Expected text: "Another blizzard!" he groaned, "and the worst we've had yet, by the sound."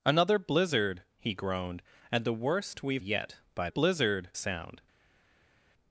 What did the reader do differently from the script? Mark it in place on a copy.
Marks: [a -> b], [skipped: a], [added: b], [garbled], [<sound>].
"Another blizzard!" he groaned, "and the worst we've [skipped: had] yet, by [the -> blizzard] sound."